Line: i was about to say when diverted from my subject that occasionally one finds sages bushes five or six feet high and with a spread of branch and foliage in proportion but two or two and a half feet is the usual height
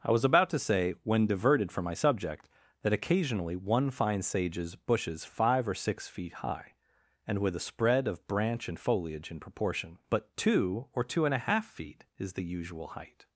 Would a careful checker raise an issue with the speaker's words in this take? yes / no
no